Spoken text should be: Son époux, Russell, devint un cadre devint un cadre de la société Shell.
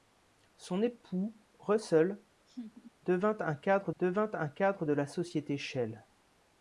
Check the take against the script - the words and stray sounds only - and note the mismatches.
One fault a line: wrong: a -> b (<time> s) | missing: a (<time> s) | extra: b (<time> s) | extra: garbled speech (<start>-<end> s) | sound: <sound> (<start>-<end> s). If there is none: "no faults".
sound: laugh (2.5-2.9 s)